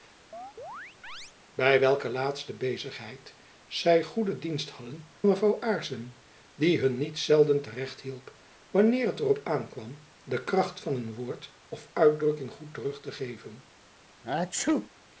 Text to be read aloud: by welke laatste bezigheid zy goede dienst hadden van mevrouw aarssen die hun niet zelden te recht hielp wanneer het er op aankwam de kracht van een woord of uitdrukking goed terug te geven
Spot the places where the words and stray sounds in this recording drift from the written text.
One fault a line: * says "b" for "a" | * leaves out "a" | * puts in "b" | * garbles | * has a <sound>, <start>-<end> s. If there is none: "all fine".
* has a chirp, 0.3-1.3 s
* leaves out "van"
* has a sneeze, 14.2-14.9 s